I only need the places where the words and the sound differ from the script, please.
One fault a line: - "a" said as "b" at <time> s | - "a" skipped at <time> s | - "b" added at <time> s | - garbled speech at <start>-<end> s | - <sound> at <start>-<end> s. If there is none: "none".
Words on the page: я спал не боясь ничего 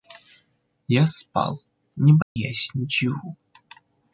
- dropout at 2.2-2.4 s